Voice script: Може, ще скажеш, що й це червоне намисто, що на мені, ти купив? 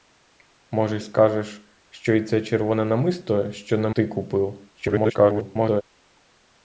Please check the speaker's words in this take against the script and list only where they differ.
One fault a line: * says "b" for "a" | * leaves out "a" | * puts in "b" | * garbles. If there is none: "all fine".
* leaves out "ще"
* leaves out "мені"
* garbles